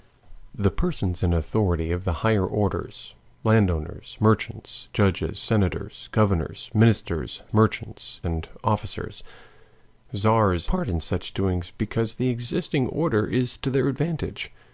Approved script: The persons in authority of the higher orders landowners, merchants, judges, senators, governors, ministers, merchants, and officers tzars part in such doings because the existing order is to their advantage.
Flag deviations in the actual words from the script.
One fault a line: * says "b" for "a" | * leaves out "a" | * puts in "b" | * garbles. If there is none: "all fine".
all fine